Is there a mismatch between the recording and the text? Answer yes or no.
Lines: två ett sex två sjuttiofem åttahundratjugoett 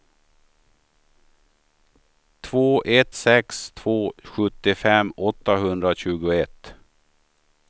no